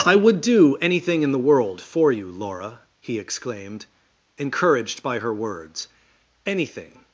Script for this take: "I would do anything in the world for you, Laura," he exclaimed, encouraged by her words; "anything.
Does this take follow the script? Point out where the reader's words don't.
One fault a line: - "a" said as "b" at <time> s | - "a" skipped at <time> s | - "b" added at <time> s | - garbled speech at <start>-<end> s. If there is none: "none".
none